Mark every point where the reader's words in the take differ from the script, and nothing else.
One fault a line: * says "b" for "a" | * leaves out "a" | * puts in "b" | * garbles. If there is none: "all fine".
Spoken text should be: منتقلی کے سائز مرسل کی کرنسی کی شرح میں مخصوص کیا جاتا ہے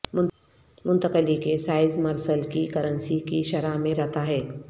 * leaves out "مخصوص کیا"